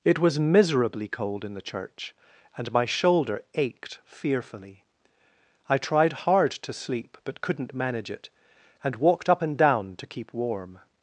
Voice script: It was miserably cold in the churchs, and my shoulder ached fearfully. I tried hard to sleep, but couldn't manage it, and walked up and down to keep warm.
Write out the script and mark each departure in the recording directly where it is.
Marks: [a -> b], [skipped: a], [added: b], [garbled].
It was miserably cold in the [churchs, -> church] and my shoulder ached fearfully. I tried hard to sleep, but couldn't manage it, and walked up and down to keep warm.